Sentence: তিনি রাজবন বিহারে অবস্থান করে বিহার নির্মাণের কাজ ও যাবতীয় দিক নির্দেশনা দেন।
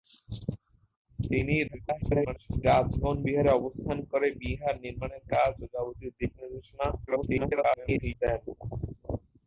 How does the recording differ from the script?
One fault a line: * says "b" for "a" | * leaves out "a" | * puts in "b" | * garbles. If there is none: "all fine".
* garbles
* garbles